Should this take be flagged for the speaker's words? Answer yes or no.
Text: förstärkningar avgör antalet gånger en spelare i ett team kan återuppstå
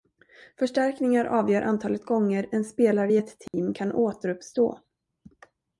no